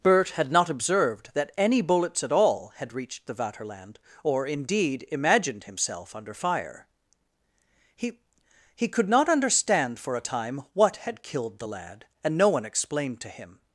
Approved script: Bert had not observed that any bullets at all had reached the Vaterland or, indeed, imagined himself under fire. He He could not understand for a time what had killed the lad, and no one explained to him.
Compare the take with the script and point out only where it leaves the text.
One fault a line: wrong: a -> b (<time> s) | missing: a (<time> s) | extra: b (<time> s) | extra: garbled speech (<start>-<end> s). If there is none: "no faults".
no faults